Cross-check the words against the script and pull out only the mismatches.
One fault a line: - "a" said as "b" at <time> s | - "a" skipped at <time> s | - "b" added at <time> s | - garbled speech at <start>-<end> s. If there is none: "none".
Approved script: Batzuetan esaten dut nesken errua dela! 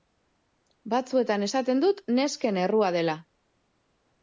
none